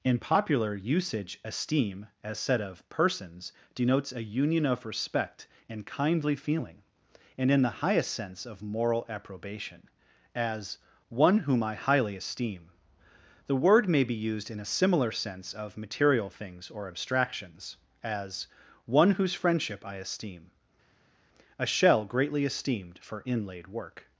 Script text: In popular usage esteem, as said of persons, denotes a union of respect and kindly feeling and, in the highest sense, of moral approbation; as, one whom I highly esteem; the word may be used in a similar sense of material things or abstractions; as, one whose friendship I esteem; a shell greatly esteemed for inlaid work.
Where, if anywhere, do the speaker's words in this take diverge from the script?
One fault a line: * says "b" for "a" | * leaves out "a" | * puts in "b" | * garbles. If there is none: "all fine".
all fine